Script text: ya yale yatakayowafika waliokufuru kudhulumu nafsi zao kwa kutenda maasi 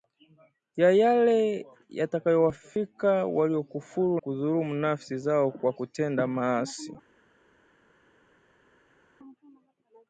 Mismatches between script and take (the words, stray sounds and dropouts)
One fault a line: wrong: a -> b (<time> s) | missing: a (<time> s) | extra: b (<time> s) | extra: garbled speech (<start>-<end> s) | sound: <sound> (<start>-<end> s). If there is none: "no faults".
no faults